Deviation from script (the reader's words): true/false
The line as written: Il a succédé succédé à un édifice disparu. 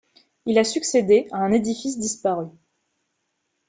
true